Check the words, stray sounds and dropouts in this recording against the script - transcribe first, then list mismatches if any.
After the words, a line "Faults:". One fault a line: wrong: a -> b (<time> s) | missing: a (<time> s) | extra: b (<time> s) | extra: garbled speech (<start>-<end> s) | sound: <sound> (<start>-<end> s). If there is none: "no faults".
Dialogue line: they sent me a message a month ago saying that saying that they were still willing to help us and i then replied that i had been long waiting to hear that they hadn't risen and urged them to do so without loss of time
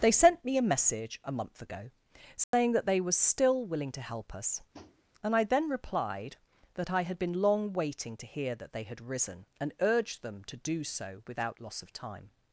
they sent me a message a month ago saying that they were still willing to help us and i then replied that i had been long waiting to hear that they had risen and urged them to do so without loss of time
Faults:
sound: dropout (2.4-2.5 s)
missing: saying that (2.9 s)
sound: tap (4.7-5.0 s)
wrong: hadn't -> had (8.8 s)